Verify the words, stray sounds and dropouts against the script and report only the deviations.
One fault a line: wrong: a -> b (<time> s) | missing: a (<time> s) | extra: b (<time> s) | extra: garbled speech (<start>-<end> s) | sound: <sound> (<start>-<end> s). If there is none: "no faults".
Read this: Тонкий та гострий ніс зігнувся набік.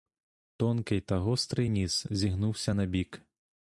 no faults